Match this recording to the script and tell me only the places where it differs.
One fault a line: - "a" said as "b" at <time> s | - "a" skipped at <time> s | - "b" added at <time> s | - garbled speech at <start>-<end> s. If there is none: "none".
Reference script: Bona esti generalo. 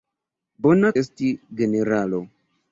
none